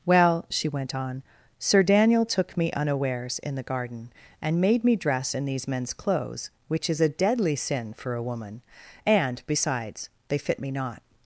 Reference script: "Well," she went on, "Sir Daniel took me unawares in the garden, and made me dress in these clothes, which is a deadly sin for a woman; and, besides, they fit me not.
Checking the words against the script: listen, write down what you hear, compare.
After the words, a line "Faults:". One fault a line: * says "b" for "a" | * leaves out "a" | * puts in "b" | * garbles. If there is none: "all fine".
"Well," she went on, "Sir Daniel took me unawares in the garden, and made me dress in these men's clothes, which is a deadly sin for a woman; and, besides, they fit me not.
Faults:
* puts in "men's"